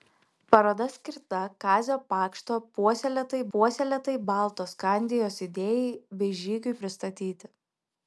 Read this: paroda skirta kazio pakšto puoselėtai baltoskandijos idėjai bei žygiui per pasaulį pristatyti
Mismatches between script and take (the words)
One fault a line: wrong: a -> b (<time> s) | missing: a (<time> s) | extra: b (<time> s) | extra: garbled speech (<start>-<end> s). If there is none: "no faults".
extra: puoselėtai (3.6 s)
missing: per pasaulį (6.8 s)